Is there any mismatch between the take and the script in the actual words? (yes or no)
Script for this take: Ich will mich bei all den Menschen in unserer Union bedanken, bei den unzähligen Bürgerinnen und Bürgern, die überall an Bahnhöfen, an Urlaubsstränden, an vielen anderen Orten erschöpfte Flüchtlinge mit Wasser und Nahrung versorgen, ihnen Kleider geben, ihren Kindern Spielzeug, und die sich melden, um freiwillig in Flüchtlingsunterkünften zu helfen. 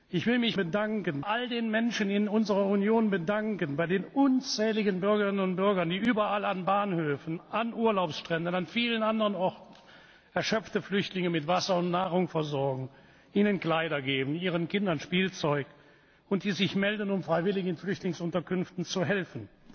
yes